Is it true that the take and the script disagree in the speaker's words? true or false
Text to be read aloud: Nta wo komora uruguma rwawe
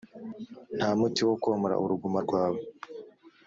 true